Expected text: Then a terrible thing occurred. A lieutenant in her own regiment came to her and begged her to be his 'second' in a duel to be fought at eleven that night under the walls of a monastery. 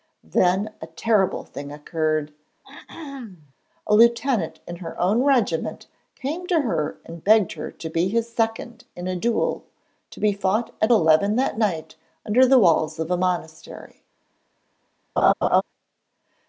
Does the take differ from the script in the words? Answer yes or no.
no